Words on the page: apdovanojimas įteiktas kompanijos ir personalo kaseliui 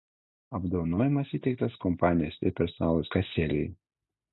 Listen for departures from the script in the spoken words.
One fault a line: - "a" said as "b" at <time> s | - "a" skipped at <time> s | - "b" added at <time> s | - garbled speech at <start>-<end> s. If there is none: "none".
none